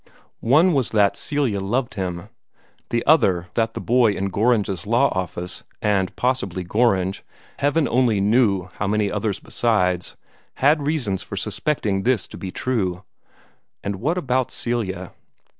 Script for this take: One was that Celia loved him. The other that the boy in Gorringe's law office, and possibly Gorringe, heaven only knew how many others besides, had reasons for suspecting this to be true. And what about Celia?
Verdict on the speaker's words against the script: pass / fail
pass